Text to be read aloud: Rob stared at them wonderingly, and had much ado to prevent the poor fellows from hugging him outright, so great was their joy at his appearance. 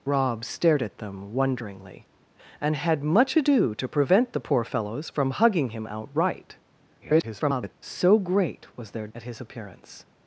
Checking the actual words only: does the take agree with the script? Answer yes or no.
no